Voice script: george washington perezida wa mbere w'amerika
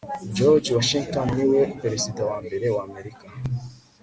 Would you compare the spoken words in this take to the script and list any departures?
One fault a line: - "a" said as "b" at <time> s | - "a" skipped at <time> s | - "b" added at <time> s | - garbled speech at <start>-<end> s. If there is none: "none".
- "niwe" added at 1.4 s